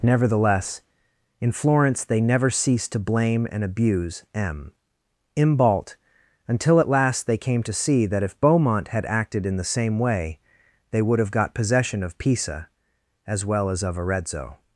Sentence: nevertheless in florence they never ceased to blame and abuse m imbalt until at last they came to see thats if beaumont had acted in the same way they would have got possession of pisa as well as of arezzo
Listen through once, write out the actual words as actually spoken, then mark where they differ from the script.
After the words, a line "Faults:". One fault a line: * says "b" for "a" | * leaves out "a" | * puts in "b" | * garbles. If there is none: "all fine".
nevertheless in florence they never ceased to blame and abuse m imbalt until at last they came to see that if beaumont had acted in the same way they would have got possession of pisa as well as of arezzo
Faults:
* says "that" for "thats"